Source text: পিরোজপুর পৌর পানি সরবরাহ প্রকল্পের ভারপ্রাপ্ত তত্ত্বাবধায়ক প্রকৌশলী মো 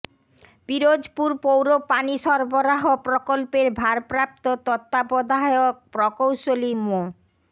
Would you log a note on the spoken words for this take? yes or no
no